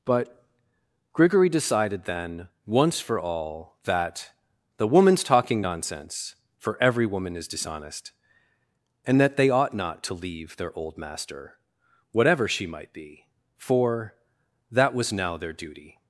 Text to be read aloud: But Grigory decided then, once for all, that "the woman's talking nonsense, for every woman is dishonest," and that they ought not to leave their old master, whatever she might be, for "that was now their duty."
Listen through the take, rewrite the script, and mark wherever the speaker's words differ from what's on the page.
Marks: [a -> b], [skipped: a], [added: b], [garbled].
But Grigory decided then, once for all, that "the woman's talking nonsense, for every woman is dishonest," and that they ought not to leave their old master, whatever she might be, for "that was now their duty."